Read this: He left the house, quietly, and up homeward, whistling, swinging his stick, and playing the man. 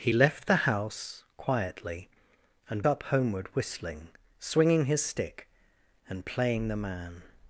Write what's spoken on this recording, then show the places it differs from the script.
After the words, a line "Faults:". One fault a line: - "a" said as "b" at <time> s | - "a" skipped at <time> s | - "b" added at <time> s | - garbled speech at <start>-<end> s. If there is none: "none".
He left the house, quietly, and up homeward, whistling, swinging his stick, and playing the man.
Faults:
none